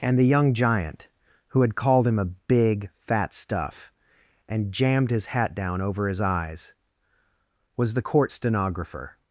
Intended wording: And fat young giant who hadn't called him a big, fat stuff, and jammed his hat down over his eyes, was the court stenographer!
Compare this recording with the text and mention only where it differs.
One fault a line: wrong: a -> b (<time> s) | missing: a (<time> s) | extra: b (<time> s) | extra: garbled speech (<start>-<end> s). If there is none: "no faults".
wrong: fat -> the (0.2 s)
wrong: hadn't -> had (1.6 s)